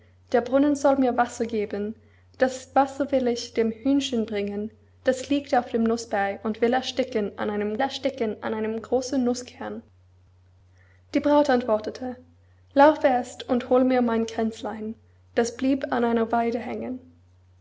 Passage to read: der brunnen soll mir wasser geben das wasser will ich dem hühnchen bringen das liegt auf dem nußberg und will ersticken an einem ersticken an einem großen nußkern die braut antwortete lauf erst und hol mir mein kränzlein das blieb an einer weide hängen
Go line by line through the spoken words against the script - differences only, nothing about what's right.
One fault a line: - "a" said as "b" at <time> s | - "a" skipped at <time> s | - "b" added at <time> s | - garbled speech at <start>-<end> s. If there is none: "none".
none